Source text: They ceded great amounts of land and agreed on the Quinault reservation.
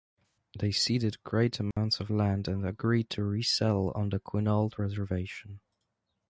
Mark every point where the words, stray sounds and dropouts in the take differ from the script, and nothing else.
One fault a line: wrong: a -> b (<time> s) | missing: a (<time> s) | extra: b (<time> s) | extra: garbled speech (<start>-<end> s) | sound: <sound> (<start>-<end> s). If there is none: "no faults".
sound: dropout (1.7-1.8 s)
extra: to resettle (3.1 s)